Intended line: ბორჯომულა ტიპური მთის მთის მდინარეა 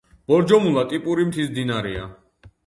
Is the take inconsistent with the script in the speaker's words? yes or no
yes